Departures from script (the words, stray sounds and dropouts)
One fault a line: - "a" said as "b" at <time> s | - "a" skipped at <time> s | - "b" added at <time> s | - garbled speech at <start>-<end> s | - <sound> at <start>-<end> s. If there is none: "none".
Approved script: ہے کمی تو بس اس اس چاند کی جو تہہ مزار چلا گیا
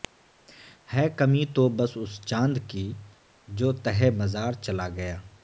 - "اس" skipped at 2.1 s